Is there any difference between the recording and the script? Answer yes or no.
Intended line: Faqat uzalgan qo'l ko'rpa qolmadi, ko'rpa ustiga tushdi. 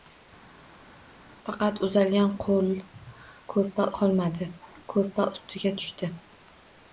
no